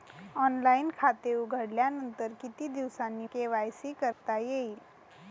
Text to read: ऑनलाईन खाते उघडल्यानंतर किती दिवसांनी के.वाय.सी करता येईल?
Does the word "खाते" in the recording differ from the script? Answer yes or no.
no